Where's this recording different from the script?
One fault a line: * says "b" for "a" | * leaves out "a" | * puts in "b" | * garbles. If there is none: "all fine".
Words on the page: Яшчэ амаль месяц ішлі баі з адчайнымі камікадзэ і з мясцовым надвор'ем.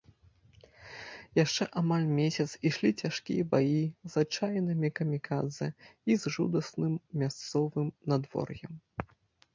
* puts in "цяжкія"
* puts in "жудасным"